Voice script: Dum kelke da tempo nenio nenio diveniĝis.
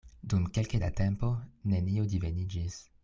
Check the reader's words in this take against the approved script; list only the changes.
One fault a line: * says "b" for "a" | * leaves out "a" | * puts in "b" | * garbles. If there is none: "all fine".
* leaves out "nenio"